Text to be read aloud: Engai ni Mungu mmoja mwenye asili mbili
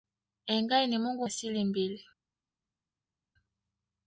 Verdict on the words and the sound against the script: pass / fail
fail